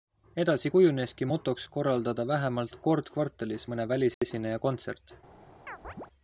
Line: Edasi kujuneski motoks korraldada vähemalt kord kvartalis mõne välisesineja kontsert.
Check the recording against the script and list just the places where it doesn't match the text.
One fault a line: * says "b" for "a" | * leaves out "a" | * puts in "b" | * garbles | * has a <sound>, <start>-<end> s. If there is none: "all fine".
* has a dropout, 4.1-4.2 s
* has a chirp, 5.7-6.1 s